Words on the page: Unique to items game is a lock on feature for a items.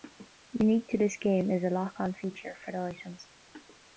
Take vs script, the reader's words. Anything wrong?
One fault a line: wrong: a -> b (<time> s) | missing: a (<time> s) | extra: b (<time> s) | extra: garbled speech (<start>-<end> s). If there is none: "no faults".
wrong: items -> this (1.0 s)
wrong: a -> the (2.7 s)